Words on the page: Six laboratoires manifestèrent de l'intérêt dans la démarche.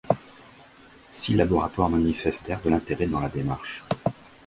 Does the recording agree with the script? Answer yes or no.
yes